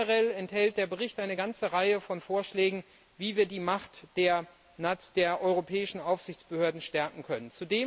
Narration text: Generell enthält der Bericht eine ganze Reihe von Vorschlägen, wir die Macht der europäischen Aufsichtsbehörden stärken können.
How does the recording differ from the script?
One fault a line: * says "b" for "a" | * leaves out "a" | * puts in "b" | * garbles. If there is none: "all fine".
* puts in "wie"